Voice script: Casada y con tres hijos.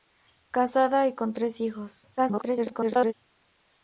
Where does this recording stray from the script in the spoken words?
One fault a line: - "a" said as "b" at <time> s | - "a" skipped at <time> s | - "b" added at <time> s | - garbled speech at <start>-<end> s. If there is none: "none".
- garbled speech at 2.2-3.1 s